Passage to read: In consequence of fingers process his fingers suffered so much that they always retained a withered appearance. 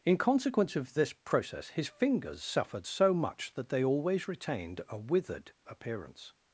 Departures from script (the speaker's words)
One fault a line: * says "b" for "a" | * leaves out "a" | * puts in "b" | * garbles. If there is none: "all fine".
* says "this" for "fingers"